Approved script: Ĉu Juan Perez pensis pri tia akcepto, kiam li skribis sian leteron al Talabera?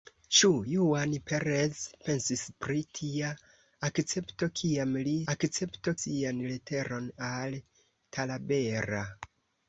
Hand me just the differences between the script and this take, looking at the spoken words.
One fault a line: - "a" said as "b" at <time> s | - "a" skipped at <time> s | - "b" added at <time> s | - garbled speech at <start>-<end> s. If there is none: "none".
- "skribis" said as "akcepto" at 5.3 s